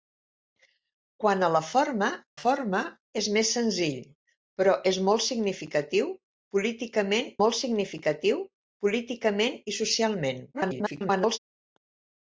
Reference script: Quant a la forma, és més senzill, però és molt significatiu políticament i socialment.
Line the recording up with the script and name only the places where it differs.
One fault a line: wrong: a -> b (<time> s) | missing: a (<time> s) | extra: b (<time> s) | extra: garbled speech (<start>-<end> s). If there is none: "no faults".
extra: forma (2.4 s)
extra: molt significatiu políticament (7.4 s)
extra: garbled speech (10.5-11.4 s)